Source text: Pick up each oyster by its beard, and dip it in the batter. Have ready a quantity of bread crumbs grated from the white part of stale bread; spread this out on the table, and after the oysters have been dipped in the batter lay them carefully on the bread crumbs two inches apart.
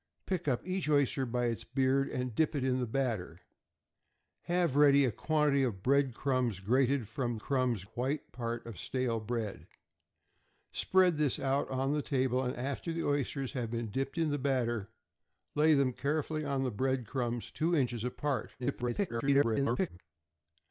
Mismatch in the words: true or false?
true